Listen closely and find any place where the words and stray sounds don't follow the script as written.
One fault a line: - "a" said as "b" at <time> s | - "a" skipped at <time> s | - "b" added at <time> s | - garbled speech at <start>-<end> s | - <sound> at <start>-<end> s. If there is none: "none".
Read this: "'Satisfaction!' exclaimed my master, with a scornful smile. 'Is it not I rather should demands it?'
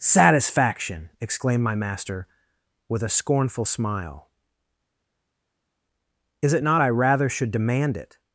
- "demands" said as "demand" at 7.5 s